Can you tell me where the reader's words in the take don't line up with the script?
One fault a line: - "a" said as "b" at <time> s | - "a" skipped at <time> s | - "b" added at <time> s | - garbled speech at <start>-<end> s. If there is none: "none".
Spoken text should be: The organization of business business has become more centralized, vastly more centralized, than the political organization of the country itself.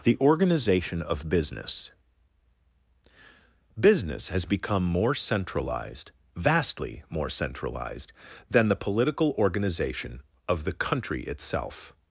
none